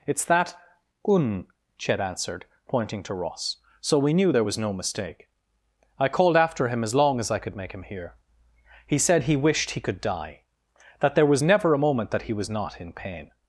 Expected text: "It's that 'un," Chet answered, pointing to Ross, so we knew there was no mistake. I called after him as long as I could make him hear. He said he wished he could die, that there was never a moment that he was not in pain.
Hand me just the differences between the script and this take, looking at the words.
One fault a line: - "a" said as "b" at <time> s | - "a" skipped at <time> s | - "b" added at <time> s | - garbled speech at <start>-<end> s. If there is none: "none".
none